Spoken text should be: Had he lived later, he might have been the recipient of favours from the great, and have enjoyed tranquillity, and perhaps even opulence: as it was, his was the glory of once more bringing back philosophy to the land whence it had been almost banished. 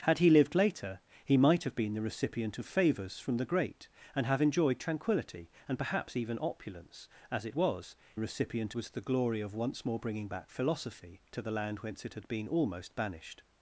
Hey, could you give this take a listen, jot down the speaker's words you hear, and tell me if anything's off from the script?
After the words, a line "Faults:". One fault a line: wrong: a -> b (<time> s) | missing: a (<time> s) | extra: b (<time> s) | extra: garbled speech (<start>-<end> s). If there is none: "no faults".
Had he lived later, he might have been the recipient of favours from the great, and have enjoyed tranquillity, and perhaps even opulence: as it was, recipient was the glory of once more bringing back philosophy to the land whence it had been almost banished.
Faults:
wrong: his -> recipient (8.2 s)